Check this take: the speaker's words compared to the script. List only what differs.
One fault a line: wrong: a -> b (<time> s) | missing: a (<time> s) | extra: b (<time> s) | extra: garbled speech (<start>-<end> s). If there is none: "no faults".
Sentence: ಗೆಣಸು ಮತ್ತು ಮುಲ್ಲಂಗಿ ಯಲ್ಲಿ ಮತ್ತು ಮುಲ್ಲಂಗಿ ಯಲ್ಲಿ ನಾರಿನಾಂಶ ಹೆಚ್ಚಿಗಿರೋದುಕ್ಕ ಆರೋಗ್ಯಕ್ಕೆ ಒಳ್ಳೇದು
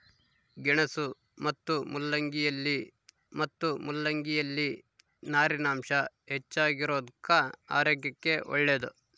no faults